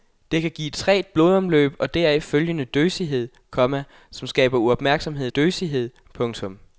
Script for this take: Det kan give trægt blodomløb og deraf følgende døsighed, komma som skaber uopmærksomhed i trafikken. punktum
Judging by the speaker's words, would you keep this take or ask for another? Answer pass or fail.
fail